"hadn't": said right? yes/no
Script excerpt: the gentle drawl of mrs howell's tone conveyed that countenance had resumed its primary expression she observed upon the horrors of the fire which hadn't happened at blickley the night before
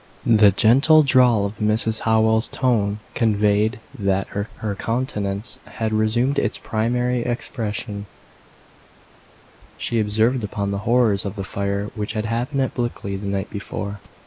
no